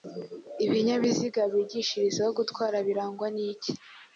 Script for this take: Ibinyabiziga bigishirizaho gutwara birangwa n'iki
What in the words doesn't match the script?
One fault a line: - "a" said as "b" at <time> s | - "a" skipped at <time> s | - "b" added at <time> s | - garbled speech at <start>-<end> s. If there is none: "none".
none